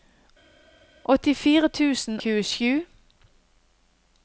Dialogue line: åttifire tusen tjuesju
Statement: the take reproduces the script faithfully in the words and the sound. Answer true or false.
true